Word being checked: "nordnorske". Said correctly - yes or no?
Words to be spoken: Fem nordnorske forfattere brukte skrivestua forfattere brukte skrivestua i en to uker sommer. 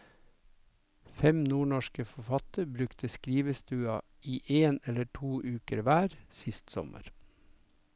yes